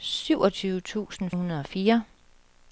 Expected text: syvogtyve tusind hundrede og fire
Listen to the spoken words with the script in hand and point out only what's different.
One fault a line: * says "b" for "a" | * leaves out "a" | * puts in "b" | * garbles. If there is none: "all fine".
all fine